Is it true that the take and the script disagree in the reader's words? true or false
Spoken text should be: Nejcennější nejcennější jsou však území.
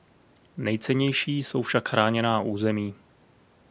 true